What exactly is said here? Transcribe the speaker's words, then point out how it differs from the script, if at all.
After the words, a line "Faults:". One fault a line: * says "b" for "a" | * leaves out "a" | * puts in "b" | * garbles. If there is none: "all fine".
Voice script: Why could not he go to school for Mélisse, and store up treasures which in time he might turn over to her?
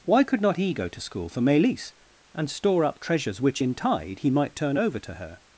Why could not he go to school for Mélisse, and store up treasures which in tide he might turn over to her?
Faults:
* says "tide" for "time"